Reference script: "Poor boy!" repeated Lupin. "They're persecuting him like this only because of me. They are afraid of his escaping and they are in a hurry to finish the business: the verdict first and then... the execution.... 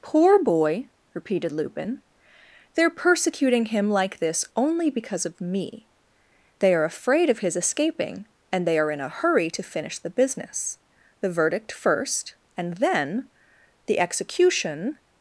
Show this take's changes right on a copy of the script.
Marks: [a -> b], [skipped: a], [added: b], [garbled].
"Poor boy!" repeated Lupin. "They're persecuting him like this only because of me. They are afraid of his escaping and they are in a hurry to finish the business: the verdict first and then... the execution....